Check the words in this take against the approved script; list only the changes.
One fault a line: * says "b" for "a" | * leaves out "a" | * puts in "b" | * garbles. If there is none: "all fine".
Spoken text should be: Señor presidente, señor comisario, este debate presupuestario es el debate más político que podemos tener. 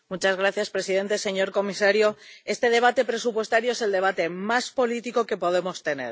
all fine